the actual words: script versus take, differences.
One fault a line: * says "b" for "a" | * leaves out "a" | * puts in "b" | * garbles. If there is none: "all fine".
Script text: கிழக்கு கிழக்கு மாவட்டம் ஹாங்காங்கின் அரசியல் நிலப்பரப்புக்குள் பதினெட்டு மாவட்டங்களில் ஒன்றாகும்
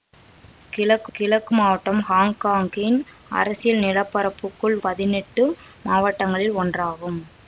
all fine